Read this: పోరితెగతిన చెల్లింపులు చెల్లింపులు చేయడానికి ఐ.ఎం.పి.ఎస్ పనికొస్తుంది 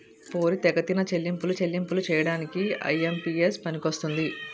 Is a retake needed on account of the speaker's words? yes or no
no